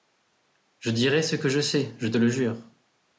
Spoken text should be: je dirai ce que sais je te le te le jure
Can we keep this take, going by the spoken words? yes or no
no